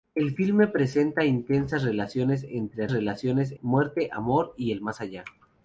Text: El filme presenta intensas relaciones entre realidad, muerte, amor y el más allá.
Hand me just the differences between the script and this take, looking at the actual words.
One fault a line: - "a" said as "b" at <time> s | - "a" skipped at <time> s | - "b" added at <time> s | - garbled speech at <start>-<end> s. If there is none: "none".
- "realidad" said as "relaciones" at 2.9 s